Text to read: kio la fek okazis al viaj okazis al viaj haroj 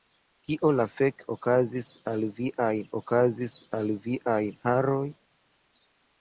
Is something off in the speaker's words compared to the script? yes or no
no